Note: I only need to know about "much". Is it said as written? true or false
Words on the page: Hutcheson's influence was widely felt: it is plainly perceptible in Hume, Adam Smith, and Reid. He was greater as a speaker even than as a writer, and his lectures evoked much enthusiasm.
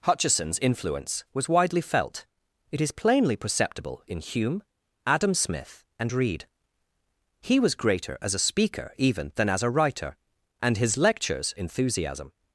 false